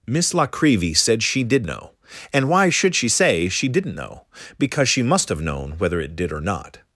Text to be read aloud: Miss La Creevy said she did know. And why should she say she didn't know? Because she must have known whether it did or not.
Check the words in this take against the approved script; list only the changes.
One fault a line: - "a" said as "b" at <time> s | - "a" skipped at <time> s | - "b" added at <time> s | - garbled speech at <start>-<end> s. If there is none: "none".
none